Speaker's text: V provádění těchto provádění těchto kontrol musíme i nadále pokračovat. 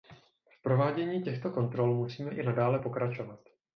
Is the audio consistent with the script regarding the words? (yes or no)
no